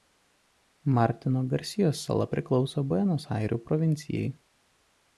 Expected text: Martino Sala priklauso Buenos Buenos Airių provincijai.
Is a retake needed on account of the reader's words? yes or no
yes